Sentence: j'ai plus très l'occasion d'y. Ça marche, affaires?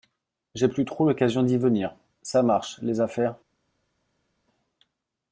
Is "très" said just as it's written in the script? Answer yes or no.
no